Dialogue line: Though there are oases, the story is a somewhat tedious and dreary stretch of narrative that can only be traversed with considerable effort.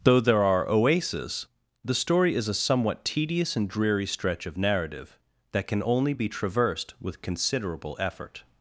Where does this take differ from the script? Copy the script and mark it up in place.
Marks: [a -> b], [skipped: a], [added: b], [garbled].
Though there are oases, the story is a somewhat tedious and dreary stretch of narrative that can only be traversed with considerable effort.